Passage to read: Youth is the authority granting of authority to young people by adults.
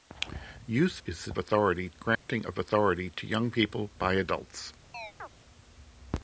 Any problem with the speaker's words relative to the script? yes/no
no